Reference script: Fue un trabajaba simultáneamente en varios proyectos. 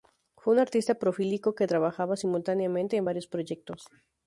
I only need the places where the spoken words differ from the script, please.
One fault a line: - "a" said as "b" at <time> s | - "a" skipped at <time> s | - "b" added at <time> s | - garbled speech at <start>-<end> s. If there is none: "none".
- "artista prolífico que" added at 0.6 s